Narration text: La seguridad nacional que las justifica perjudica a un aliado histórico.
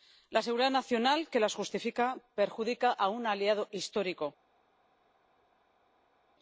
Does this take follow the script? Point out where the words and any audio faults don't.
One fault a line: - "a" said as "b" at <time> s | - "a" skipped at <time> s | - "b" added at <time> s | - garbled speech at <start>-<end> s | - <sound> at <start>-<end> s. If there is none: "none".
none